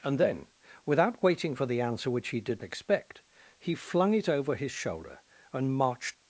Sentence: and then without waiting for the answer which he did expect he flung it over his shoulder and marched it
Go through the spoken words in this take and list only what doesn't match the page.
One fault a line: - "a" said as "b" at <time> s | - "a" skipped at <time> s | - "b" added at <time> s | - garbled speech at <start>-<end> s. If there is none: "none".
none